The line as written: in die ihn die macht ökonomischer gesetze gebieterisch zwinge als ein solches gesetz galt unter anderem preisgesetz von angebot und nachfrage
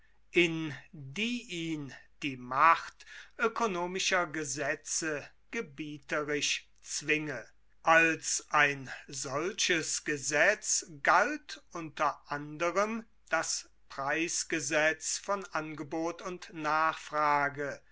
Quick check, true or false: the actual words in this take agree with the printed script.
false